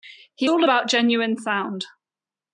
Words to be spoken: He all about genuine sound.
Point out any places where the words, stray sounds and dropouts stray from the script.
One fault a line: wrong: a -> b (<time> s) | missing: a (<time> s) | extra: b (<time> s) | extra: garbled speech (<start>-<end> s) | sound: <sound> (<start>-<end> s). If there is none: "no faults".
no faults